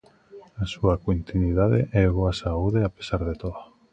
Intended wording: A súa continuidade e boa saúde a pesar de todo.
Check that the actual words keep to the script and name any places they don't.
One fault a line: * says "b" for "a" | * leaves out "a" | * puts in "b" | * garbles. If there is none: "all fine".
all fine